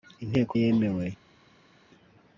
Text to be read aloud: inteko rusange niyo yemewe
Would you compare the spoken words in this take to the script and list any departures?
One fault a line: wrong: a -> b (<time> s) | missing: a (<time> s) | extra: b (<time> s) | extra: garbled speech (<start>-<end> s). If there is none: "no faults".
missing: rusange niyo (0.5 s)